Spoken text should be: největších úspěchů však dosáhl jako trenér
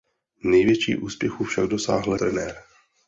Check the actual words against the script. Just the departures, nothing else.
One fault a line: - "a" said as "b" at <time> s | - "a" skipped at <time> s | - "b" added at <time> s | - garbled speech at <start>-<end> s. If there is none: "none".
- "jako" skipped at 2.1 s